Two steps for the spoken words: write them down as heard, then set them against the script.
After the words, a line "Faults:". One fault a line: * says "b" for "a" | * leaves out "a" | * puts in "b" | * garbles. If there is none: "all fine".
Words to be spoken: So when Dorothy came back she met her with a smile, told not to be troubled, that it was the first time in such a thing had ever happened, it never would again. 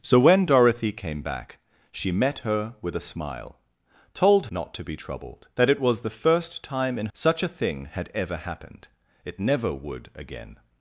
So when Dorothy came back she met her with a smile, told not to be troubled, that it was the first time in such a thing had ever happened, it never would again.
Faults:
all fine